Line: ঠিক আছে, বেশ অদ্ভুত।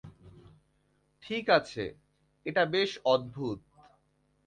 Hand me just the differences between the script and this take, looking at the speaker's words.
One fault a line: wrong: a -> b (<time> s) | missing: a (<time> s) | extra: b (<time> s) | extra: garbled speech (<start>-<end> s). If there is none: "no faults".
extra: এটা (2.4 s)